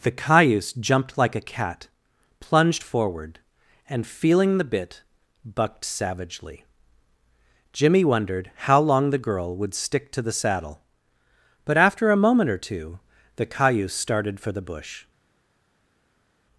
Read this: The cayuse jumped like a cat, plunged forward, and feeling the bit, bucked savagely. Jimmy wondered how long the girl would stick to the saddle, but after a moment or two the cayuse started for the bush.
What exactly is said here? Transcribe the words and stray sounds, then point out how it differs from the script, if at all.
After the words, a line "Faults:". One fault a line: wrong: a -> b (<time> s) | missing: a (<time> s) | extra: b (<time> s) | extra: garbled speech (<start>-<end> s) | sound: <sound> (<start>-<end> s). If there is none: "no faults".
The cayuse jumped like a cat, plunged forward, and feeling the bit, bucked savagely. Jimmy wondered how long the girl would stick to the saddle, but after a moment or two the cayuse started for the bush.
Faults:
no faults